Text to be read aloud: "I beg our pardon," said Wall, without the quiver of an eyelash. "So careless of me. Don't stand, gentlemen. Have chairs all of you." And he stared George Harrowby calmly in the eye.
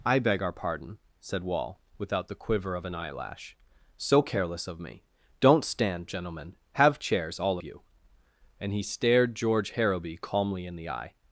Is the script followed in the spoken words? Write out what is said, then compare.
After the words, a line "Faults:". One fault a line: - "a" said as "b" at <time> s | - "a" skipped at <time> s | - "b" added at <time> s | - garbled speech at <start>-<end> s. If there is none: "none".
"I beg our pardon," said Wall, without the quiver of an eyelash. "So careless of me. Don't stand, gentlemen. Have chairs all you." And he stared George Harrowby calmly in the eye.
Faults:
- "of" skipped at 7.6 s